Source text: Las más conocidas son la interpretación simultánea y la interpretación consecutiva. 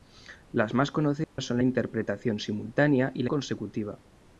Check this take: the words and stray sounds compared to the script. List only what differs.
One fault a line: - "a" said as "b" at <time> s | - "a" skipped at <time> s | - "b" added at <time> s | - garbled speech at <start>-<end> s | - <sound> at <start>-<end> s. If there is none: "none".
- dropout at 1.2-1.4 s
- "interpretación" skipped at 3.3 s